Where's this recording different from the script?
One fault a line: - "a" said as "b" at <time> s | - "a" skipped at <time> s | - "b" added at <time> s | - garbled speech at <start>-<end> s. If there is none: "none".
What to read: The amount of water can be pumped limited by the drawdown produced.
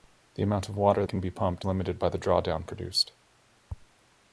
none